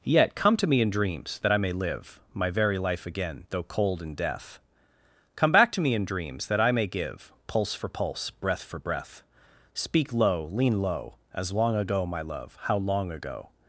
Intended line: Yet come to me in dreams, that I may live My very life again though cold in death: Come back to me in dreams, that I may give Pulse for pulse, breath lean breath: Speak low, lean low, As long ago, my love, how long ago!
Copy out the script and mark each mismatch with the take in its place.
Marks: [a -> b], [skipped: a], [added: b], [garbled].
Yet come to me in dreams, that I may live My very life again though cold in death: Come back to me in dreams, that I may give Pulse for pulse, breath [lean -> for] breath: Speak low, lean low, As long ago, my love, how long ago!